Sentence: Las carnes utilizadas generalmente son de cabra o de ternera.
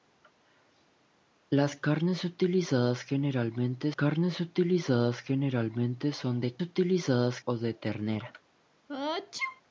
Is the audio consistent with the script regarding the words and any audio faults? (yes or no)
no